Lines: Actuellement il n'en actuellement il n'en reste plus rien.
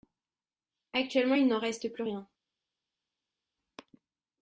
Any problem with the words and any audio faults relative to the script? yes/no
yes